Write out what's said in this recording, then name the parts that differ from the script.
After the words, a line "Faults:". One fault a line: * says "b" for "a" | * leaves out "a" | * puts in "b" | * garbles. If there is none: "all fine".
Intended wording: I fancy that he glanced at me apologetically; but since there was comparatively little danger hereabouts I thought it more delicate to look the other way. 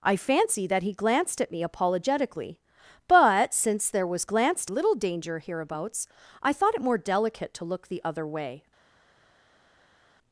I fancy that he glanced at me apologetically; but since there was glanced little danger hereabouts I thought it more delicate to look the other way.
Faults:
* says "glanced" for "comparatively"